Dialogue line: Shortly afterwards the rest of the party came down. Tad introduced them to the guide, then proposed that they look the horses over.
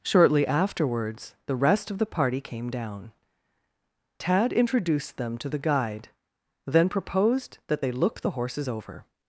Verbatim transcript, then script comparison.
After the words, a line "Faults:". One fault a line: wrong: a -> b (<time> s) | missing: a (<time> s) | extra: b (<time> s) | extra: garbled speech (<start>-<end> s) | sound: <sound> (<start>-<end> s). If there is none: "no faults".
Shortly afterwards the rest of the party came down. Tad introduced them to the guide, then proposed that they look the horses over.
Faults:
no faults